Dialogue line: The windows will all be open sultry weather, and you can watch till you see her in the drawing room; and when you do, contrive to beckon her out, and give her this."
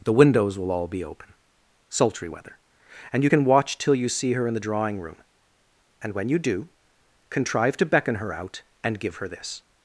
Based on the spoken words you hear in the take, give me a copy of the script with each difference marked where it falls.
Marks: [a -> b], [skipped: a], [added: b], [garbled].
The windows will all be open sultry weather, and you can watch till you see her in the drawing room; and when you do, contrive to beckon her out, and give her this."